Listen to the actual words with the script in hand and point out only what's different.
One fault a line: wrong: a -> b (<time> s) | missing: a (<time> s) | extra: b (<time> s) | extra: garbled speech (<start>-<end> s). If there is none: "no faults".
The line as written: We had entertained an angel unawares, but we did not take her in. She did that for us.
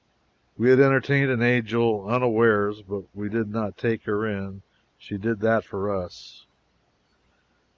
no faults